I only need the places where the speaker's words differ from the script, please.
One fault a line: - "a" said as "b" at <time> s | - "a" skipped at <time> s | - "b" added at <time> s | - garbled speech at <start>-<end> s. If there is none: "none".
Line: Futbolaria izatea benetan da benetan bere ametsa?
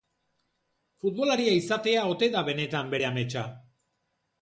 - "benetan" said as "ote" at 2.1 s